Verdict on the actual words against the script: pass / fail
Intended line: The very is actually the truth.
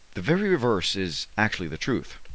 fail